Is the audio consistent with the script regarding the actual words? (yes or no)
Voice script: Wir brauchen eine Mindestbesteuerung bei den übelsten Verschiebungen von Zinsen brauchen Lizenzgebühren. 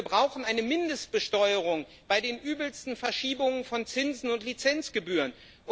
no